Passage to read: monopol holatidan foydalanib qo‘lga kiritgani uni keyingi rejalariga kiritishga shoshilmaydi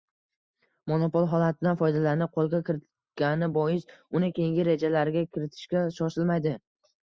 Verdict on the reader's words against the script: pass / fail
fail